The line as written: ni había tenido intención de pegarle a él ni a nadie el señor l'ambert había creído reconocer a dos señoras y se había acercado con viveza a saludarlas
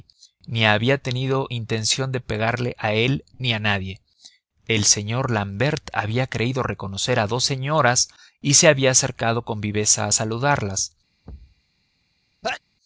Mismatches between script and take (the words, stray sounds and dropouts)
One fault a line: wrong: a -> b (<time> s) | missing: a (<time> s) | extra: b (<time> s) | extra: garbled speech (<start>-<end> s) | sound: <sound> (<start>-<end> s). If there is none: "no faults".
sound: thud (11.2-11.6 s)
sound: sneeze (12.4-12.6 s)